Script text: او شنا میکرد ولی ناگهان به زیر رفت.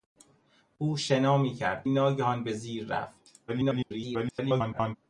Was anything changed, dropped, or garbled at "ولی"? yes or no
yes